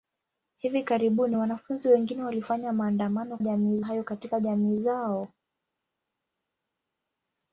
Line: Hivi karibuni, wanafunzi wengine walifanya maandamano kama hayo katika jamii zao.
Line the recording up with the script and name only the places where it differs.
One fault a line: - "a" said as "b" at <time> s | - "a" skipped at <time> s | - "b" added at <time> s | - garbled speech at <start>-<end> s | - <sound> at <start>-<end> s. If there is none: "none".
- "kama" said as "jamii" at 3.4 s